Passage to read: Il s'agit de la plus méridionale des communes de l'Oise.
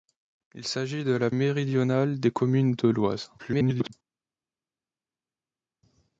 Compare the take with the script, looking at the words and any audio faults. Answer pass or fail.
fail